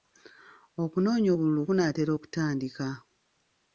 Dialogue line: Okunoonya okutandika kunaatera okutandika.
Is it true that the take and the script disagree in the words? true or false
true